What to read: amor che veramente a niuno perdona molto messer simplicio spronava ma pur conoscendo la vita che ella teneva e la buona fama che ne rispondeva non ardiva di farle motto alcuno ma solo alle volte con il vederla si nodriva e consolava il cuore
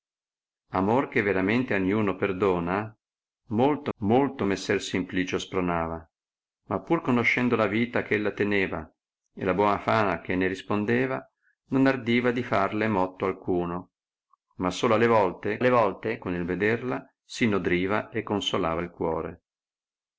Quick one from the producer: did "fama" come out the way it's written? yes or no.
yes